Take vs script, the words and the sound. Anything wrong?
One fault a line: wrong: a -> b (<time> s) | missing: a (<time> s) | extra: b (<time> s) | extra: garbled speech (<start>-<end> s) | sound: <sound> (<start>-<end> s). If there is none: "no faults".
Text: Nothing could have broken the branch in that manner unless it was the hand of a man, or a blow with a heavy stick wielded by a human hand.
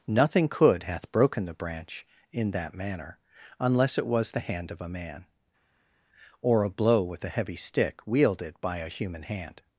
wrong: have -> hath (0.8 s)